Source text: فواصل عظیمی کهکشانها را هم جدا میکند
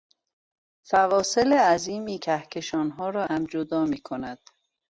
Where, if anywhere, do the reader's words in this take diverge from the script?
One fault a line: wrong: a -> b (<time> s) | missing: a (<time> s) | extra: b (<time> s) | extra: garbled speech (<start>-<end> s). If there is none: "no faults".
no faults